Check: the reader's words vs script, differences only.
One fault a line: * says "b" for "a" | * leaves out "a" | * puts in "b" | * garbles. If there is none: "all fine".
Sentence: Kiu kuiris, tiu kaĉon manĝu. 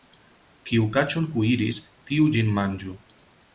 * puts in "kaĉon"
* says "ĝin" for "kaĉon"